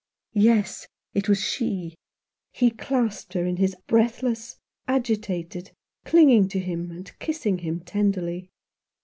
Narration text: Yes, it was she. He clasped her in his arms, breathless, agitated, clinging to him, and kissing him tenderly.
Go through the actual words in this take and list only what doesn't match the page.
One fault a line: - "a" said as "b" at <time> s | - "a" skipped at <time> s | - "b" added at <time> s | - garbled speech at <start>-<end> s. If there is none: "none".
- "arms" skipped at 3.8 s